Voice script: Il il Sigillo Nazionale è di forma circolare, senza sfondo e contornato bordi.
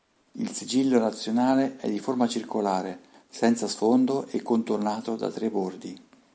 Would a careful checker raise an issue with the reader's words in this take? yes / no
yes